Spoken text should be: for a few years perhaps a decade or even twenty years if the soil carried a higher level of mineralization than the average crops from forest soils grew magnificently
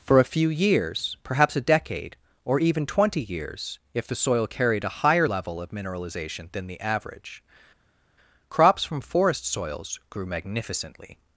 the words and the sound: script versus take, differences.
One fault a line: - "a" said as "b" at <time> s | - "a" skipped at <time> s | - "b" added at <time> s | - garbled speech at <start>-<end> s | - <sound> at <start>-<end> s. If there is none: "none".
none